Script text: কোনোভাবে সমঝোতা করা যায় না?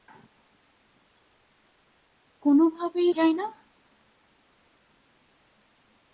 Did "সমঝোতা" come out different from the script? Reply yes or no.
yes